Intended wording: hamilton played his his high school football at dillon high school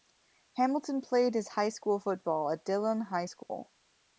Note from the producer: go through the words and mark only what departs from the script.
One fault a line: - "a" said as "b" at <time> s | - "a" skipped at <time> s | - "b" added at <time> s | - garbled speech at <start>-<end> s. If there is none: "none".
- "his" skipped at 1.5 s